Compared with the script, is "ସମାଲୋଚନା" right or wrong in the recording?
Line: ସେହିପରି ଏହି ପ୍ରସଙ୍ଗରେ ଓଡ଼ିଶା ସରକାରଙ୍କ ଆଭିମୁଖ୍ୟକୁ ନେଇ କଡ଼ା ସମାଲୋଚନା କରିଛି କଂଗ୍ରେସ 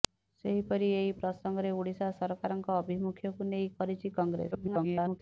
wrong